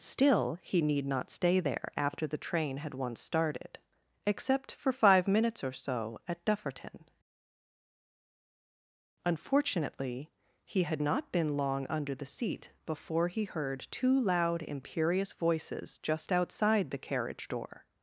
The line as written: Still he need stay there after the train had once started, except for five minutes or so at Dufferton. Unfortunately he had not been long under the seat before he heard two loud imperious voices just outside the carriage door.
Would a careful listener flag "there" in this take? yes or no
no